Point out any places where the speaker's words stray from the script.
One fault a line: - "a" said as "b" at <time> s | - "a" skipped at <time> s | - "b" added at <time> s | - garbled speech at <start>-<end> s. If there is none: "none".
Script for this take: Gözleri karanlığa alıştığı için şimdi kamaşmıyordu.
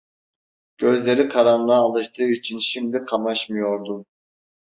none